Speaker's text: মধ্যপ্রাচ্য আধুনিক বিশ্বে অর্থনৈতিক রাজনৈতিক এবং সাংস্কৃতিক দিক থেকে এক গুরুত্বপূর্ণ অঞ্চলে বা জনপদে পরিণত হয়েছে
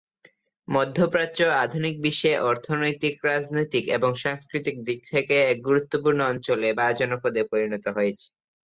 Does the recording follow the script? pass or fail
pass